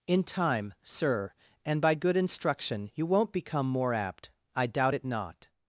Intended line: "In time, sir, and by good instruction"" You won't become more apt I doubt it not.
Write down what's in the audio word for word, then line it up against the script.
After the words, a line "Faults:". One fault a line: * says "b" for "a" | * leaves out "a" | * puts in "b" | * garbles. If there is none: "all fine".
"In time, sir, and by good instruction"" You won't become more apt I doubt it not.
Faults:
all fine